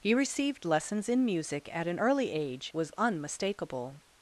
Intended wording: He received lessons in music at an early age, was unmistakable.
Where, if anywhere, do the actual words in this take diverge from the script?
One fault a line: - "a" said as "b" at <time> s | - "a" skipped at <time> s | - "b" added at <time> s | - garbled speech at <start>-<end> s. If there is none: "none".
none